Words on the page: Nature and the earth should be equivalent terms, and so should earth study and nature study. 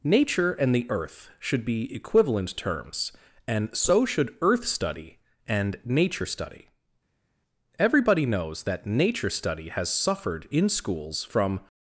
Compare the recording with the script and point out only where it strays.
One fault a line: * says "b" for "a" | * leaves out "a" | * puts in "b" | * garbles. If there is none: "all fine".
* puts in "Everybody knows that nature study has suffered in schools from"